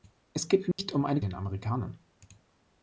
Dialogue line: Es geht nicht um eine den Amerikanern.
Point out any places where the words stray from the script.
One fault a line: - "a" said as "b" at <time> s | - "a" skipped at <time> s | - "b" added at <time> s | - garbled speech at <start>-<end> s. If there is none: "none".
none